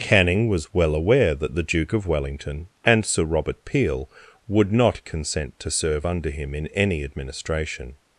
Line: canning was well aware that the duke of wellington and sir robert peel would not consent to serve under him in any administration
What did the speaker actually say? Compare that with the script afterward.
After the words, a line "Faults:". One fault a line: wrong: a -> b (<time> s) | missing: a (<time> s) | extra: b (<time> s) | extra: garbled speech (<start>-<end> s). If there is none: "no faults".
canning was well aware that the duke of wellington and sir robert peel would not consent to serve under him in any administration
Faults:
no faults